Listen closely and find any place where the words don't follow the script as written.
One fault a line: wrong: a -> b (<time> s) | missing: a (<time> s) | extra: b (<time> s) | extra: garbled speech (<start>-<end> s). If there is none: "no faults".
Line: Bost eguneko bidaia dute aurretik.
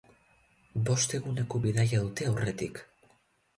no faults